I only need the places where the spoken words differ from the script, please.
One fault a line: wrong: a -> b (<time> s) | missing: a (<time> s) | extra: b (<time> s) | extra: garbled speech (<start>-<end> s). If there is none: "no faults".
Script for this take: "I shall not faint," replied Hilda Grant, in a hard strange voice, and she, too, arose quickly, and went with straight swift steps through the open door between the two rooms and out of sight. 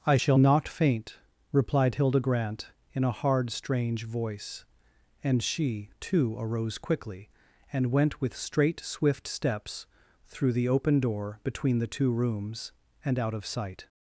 no faults